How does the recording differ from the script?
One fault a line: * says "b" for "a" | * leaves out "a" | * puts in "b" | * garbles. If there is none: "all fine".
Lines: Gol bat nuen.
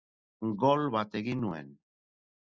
* puts in "egin"